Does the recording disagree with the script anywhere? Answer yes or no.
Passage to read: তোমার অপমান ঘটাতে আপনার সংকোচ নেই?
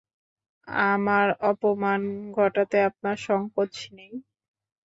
yes